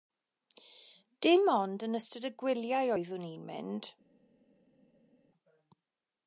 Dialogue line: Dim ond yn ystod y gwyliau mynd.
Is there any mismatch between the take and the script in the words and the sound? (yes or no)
yes